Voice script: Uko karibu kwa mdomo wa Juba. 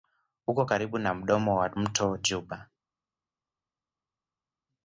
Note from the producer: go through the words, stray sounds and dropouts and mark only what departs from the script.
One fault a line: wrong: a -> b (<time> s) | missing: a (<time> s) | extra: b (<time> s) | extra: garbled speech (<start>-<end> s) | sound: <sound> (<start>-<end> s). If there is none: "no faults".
wrong: kwa -> na (1.0 s)
extra: mto (1.7 s)